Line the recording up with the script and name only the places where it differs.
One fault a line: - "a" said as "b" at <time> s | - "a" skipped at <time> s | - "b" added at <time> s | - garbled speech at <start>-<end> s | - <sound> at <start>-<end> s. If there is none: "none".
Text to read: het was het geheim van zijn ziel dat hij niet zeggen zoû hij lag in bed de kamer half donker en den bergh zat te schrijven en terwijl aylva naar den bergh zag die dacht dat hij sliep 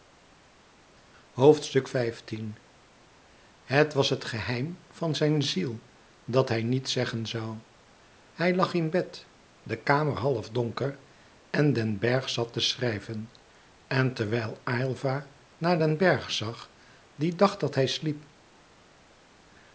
none